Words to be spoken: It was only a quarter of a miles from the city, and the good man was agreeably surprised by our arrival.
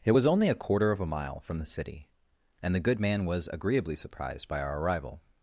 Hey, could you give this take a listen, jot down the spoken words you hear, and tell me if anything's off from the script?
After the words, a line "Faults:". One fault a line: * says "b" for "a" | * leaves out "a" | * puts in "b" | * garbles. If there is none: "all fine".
It was only a quarter of a mile from the city, and the good man was agreeably surprised by our arrival.
Faults:
* says "mile" for "miles"